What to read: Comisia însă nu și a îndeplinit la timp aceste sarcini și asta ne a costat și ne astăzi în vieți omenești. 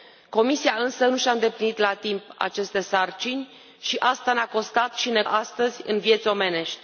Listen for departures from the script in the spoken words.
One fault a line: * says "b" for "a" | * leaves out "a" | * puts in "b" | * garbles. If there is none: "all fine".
all fine